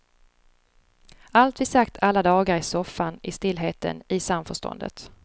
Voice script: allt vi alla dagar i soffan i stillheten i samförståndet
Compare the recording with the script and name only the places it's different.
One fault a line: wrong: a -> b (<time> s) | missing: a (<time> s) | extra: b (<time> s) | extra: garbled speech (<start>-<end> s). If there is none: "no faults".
extra: sagt (1.6 s)